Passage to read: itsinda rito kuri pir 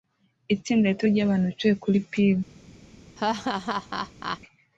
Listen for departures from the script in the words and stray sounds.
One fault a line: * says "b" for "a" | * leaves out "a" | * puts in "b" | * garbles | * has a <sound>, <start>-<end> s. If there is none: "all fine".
* puts in "ryabantu bicaye"
* has a laugh, 3.2-4.4 s